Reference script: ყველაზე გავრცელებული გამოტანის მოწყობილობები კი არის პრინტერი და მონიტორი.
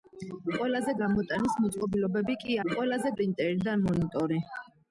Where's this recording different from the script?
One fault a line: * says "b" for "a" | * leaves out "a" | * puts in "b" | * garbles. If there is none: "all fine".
* leaves out "გავრცელებული"
* says "ყველაზე" for "არის"